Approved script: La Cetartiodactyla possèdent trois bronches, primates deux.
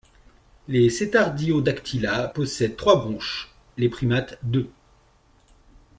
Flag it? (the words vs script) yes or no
yes